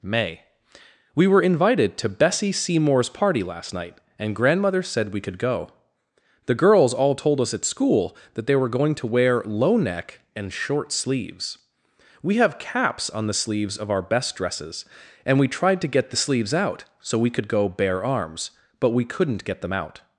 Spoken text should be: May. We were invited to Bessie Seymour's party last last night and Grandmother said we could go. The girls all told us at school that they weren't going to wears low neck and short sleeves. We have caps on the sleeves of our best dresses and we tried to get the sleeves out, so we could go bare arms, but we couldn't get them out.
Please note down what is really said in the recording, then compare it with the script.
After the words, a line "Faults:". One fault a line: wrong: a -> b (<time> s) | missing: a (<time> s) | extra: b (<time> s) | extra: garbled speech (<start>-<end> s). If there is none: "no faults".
May. We were invited to Bessie Seymour's party last night and Grandmother said we could go. The girls all told us at school that they were going to wear low neck and short sleeves. We have caps on the sleeves of our best dresses and we tried to get the sleeves out, so we could go bare arms, but we couldn't get them out.
Faults:
missing: last (3.7 s)
wrong: weren't -> were (8.6 s)
wrong: wears -> wear (9.1 s)